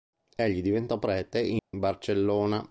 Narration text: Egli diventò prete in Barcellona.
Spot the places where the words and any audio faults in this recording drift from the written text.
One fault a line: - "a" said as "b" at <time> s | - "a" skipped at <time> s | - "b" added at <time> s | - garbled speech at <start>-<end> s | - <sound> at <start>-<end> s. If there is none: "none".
- dropout at 1.6-1.7 s